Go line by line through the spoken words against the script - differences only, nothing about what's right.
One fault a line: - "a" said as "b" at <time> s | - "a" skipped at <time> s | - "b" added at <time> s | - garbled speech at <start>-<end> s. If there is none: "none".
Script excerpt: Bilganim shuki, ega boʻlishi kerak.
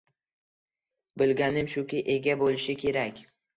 none